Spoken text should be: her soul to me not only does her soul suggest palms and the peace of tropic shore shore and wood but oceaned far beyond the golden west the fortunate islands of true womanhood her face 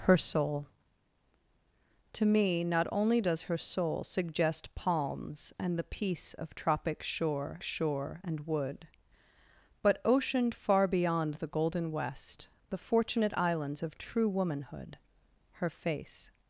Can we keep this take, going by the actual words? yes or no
yes